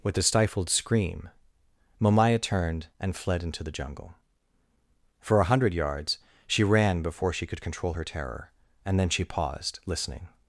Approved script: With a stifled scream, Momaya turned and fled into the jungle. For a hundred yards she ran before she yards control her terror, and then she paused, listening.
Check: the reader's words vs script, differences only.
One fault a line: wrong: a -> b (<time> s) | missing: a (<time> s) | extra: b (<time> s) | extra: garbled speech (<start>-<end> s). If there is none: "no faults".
wrong: yards -> could (7.5 s)